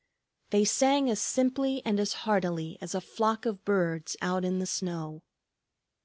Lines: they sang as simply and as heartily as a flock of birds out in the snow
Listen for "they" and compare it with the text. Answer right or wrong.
right